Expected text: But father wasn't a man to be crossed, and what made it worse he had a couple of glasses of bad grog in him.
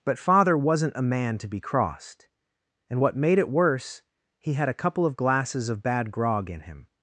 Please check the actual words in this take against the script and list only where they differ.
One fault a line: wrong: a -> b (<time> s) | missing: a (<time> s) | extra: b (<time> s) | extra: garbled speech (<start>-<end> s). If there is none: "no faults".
no faults